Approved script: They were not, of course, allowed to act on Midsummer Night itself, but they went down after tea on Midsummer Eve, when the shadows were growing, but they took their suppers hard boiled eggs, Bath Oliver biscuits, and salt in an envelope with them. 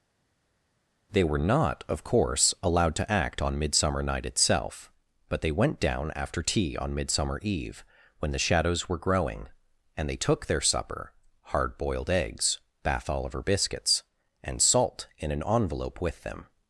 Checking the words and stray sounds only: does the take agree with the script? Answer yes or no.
no